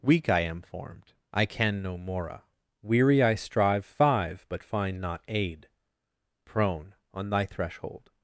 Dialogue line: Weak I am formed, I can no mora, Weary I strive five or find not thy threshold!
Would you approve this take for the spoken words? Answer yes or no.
no